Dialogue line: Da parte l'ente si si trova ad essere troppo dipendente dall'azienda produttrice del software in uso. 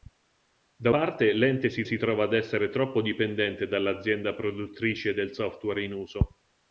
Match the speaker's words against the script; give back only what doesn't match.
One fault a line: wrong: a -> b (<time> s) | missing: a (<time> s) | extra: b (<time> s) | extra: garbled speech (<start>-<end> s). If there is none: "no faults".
no faults